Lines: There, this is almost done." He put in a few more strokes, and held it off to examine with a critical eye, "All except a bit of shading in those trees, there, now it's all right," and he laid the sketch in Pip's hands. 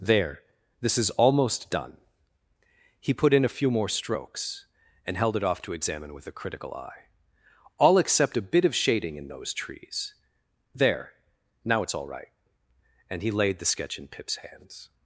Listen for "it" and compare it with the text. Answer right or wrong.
right